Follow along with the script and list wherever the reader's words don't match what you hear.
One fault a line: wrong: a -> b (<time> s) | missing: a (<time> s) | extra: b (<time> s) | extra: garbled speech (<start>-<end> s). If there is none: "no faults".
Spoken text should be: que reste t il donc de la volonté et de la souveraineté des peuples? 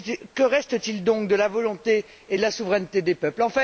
no faults